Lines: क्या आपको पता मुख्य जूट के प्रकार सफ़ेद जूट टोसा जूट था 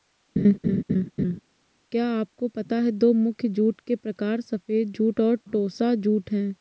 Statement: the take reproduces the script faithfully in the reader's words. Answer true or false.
false